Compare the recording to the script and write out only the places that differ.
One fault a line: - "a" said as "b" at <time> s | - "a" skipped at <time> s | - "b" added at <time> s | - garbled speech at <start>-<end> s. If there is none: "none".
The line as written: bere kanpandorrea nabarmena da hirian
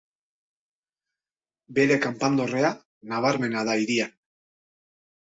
none